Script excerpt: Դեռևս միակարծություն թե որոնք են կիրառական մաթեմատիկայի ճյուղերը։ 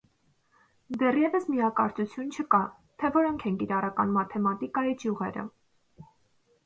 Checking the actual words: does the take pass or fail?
fail